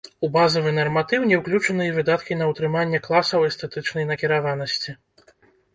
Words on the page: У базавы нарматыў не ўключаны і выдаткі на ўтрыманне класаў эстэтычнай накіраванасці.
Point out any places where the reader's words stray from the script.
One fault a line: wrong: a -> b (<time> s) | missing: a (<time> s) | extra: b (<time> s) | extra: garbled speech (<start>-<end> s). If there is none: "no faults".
no faults